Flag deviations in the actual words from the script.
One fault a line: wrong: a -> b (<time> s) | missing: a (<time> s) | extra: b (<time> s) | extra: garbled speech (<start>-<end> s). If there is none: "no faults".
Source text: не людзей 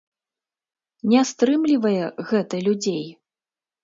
extra: стрымлівае гэта (1.3 s)